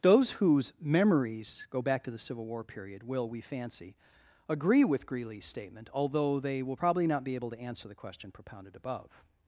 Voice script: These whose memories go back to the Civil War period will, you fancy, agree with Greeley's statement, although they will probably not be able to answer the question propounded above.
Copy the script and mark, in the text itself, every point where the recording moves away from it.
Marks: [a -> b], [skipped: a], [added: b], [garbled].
[These -> Those] whose memories go back to the Civil War period will, [you -> we] fancy, agree with Greeley's statement, although they will probably not be able to answer the question propounded above.